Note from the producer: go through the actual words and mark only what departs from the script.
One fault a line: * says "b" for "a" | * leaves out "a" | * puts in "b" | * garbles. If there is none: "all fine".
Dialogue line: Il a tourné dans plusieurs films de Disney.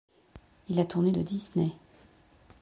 * leaves out "dans plusieurs films"